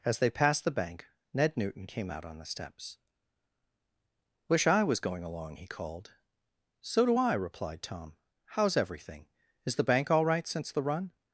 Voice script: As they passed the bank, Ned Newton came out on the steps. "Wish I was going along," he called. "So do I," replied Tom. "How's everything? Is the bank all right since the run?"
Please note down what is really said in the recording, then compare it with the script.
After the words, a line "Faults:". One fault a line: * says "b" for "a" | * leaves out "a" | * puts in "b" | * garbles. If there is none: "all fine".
As they passed the bank, Ned Newton came out on the steps. "Wish I was going along," he called. "So do I," replied Tom. "How's everything? Is the bank all right since the run?"
Faults:
all fine